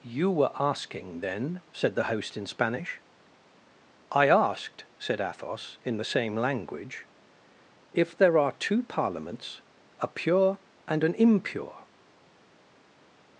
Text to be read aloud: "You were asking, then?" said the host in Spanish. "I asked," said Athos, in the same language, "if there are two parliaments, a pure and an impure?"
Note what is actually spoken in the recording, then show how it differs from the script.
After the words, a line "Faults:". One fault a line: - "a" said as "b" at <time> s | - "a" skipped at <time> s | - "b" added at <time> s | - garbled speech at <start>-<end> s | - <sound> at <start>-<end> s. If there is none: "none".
"You were asking, then?" said the host in Spanish. "I asked," said Athos, in the same language, "if there are two parliaments, a pure and an impure?"
Faults:
none